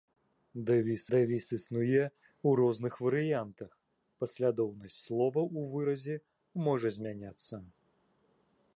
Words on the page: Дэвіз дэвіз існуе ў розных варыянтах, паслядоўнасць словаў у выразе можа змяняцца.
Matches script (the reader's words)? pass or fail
pass